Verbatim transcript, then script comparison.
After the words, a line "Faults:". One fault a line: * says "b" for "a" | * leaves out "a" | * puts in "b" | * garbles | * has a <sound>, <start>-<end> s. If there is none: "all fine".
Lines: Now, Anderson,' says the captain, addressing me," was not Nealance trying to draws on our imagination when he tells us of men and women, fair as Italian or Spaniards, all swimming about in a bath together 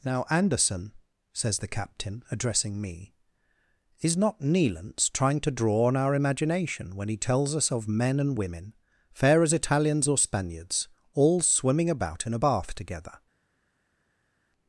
Now, Anderson,' says the captain, addressing me," is not Nealance trying to draw on our imagination when he tells us of men and women, fair as Italians or Spaniards, all swimming about in a bath together
Faults:
* says "is" for "was"
* says "draw" for "draws"
* says "Italians" for "Italian"